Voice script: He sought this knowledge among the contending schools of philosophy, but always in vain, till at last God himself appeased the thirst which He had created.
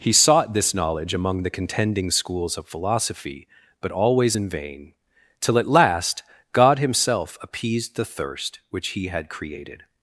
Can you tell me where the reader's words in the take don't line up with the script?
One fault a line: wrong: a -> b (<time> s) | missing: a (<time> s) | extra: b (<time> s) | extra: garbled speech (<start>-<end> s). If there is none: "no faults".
no faults